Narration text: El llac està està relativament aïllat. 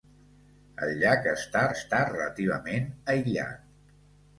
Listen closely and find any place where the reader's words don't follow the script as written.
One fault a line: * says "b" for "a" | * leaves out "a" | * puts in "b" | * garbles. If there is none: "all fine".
all fine